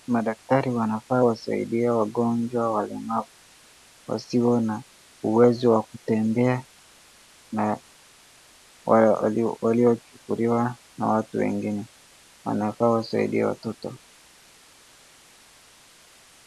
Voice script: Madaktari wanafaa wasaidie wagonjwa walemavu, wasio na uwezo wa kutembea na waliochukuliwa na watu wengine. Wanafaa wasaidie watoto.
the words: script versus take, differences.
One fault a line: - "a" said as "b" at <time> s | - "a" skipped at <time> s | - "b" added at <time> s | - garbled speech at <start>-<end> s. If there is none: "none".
none